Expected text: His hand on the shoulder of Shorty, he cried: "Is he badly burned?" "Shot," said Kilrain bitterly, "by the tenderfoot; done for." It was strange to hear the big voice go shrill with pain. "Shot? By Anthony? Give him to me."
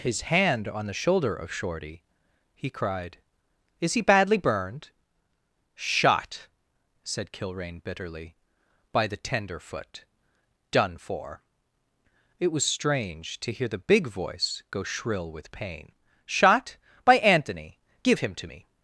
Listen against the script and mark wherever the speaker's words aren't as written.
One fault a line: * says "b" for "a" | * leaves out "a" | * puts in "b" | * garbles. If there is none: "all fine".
all fine